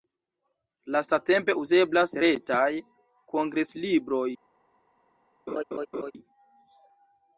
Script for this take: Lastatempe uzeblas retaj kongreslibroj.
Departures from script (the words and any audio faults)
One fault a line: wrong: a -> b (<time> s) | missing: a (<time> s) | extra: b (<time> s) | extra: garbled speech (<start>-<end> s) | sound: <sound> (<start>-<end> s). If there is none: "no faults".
sound: laugh (5.5-6.1 s)